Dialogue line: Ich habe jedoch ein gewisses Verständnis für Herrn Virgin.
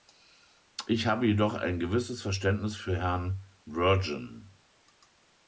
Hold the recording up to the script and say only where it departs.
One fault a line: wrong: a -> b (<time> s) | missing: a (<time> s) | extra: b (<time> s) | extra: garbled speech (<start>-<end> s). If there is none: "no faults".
no faults